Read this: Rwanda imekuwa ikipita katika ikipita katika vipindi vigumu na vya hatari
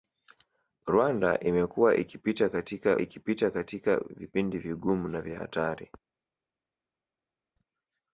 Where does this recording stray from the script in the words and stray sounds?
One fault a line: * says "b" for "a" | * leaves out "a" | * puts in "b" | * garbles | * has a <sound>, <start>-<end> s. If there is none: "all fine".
all fine